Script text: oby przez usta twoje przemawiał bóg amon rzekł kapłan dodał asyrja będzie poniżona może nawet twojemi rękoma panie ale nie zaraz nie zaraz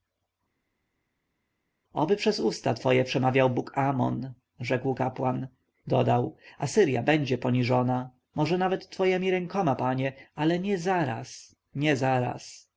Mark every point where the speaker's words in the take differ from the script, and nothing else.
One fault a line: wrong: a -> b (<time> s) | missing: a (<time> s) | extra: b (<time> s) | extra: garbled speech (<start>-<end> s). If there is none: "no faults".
no faults